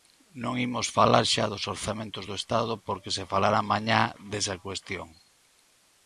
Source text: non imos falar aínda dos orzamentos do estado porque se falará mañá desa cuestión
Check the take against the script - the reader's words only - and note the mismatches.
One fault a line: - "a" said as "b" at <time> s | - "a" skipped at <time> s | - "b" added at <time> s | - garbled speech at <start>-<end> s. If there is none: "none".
- "aínda" said as "xa" at 1.3 s